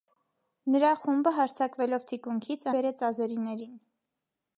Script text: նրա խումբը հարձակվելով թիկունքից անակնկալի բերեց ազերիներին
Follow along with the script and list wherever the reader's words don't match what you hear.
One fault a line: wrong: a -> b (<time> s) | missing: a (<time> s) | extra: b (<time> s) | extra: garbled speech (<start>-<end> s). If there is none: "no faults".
missing: անակնկալի (2.7 s)